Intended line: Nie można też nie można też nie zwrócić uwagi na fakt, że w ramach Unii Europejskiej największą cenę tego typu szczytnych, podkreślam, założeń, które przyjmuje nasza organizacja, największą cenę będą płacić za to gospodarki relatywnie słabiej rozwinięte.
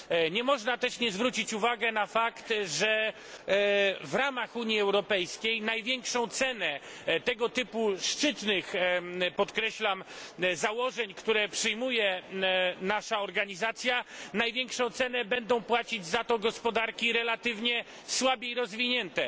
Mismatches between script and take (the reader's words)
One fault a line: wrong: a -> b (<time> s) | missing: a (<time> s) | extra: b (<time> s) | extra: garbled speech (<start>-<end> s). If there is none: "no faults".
missing: można też nie (1.1 s)